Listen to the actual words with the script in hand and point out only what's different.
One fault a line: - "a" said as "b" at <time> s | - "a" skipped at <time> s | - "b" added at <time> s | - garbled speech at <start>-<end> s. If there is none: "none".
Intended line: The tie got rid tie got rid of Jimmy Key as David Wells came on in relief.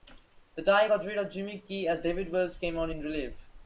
- "tie got rid" skipped at 1.2 s